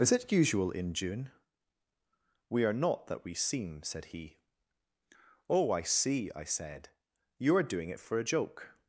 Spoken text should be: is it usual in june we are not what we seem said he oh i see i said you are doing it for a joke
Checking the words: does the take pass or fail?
fail